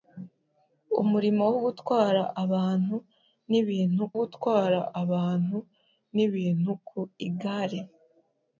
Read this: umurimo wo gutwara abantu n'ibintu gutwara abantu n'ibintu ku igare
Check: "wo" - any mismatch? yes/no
no